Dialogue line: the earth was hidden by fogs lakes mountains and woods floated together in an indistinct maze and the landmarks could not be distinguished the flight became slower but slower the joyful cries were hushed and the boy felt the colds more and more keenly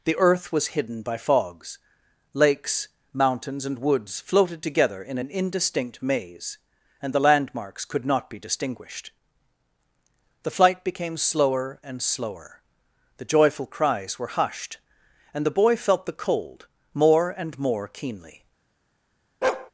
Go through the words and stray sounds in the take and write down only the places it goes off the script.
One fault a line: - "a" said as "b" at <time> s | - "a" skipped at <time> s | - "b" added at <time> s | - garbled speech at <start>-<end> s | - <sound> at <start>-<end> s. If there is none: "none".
- "but" said as "and" at 11.8 s
- "colds" said as "cold" at 16.2 s
- bark at 19.4-19.7 s